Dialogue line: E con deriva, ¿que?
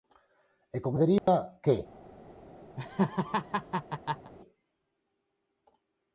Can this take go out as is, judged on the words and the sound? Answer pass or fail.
fail